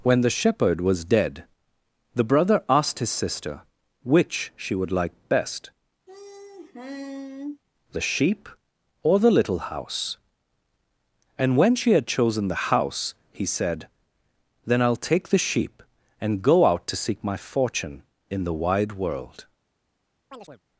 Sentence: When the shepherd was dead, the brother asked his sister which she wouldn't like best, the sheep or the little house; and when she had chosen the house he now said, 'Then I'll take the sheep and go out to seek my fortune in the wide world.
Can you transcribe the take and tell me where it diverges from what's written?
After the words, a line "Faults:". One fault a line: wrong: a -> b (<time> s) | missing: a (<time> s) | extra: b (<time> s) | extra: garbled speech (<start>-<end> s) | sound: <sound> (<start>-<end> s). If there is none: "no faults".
When the shepherd was dead, the brother asked his sister which she would like best, the sheep or the little house; and when she had chosen the house he said, 'Then I'll take the sheep and go out to seek my fortune in the wide world.
Faults:
wrong: wouldn't -> would (4.7 s)
sound: sigh (6.1-7.6 s)
missing: now (13.5 s)
sound: chirp (20.3-20.6 s)